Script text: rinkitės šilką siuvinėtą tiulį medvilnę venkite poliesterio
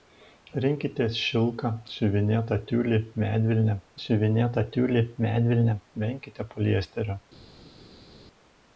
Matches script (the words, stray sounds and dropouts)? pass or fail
fail